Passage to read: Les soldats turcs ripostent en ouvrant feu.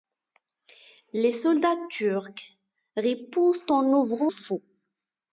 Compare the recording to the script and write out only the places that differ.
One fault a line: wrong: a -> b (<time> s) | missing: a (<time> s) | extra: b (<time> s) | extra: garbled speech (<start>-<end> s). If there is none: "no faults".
no faults